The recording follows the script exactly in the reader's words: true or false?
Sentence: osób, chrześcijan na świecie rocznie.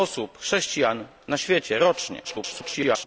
false